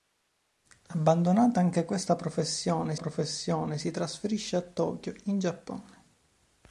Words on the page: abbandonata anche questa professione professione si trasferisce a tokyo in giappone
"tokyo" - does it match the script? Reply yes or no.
yes